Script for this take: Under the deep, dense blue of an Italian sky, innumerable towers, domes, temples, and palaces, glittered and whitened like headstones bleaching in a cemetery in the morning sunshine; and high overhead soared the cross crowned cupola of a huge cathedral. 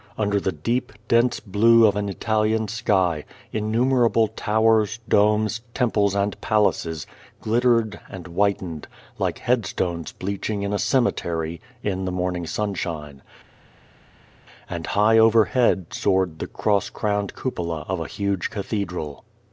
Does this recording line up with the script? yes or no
yes